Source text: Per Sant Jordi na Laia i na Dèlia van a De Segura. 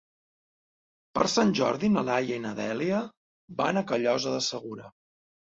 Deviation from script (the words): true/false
true